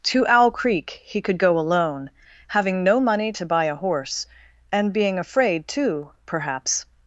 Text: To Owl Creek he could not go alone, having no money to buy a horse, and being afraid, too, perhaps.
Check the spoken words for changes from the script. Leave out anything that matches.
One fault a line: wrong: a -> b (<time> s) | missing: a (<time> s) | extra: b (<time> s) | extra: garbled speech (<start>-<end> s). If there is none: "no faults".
missing: not (1.4 s)